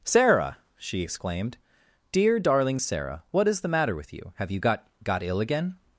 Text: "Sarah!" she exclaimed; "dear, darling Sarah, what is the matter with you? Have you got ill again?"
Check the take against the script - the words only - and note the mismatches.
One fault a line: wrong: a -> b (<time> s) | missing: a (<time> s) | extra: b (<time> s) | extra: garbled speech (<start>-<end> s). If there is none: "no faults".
extra: got (5.0 s)